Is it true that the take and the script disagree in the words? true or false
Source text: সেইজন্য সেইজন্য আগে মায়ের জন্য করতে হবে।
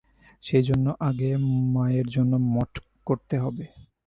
true